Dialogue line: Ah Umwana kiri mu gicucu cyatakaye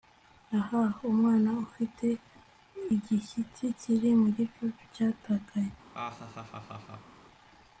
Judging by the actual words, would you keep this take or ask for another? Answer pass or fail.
fail